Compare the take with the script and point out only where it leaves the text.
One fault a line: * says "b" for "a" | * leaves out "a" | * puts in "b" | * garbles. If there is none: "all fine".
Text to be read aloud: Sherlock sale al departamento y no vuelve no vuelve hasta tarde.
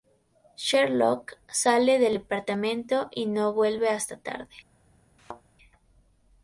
* says "del" for "al"
* leaves out "no vuelve"